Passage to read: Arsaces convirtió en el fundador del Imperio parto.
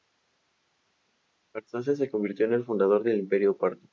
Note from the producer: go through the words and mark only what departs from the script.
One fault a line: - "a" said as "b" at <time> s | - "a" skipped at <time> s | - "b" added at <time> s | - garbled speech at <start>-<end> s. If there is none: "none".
- "se" added at 2.0 s